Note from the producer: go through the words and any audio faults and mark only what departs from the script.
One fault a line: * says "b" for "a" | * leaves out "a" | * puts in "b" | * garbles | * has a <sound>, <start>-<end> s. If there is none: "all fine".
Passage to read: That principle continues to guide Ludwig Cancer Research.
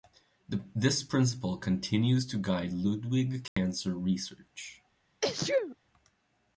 * says "This" for "That"
* has a dropout, 3.5-3.6 s
* has a sneeze, 5.2-5.8 s